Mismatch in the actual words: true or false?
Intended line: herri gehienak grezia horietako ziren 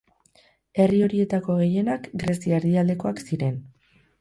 true